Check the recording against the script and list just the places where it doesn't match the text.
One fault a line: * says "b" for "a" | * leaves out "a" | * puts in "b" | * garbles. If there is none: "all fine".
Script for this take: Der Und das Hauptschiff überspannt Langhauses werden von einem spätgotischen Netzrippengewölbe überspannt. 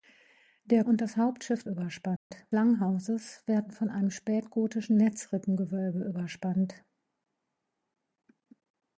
all fine